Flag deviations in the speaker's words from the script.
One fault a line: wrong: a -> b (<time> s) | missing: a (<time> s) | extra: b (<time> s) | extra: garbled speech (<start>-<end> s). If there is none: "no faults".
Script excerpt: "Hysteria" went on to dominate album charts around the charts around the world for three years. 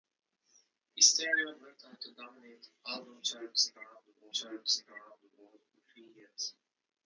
no faults